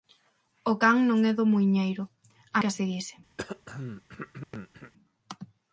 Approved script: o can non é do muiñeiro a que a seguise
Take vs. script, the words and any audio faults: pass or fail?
fail